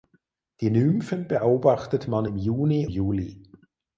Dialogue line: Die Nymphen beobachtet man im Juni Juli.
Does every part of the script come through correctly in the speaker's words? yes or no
yes